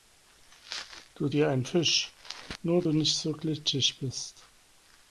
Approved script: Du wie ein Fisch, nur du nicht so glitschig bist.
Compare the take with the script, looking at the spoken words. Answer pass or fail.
pass